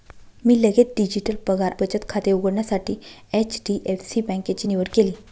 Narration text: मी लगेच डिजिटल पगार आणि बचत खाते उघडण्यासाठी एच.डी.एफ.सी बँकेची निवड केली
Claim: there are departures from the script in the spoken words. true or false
true